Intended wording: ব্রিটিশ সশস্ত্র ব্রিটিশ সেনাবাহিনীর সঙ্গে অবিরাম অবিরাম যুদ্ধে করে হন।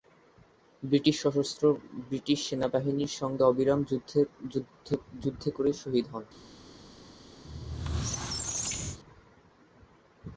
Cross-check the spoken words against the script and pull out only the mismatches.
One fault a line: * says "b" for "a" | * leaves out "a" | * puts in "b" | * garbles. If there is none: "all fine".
* leaves out "অবিরাম"
* puts in "শহীদ"